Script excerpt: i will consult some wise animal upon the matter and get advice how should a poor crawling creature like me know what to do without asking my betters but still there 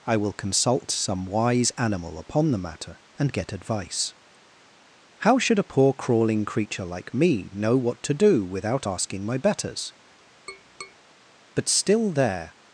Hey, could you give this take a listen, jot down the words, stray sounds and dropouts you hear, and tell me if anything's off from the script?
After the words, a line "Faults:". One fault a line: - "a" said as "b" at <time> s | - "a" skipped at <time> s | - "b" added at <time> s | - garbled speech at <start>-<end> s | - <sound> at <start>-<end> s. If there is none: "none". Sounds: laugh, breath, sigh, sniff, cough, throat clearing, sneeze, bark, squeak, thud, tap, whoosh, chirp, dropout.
i will consult some wise animal upon the matter and get advice how should a poor crawling creature like me know what to do without asking my betters but still there
Faults:
- tap at 10.5-11.0 s